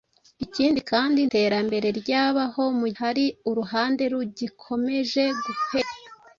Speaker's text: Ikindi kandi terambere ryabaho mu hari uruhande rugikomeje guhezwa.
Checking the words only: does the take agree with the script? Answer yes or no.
yes